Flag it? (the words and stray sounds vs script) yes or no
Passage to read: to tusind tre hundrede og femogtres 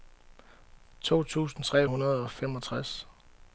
no